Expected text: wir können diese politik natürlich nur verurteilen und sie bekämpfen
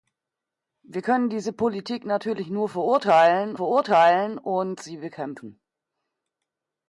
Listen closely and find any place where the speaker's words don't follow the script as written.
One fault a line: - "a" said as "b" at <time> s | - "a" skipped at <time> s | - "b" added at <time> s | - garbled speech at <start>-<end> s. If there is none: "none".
- "verurteilen" added at 3.5 s